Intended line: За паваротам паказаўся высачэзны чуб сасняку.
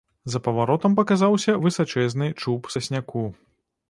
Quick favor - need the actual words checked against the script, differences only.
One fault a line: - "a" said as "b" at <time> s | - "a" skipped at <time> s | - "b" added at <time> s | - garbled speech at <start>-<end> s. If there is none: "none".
none